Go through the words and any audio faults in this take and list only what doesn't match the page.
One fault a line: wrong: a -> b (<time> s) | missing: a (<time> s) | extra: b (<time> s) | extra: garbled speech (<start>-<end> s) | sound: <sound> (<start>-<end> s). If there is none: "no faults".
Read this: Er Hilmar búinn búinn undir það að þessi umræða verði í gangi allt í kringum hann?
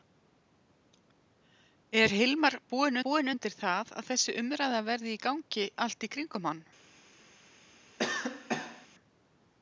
sound: cough (8.0-8.9 s)